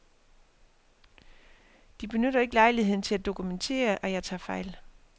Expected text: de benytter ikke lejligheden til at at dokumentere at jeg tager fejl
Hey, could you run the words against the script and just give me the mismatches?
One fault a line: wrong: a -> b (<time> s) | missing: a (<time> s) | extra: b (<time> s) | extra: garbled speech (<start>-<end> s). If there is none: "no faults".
missing: at (3.2 s)